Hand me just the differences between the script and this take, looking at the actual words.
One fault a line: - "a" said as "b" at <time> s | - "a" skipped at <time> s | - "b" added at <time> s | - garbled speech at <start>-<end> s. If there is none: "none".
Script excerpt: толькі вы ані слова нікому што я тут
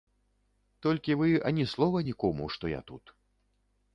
none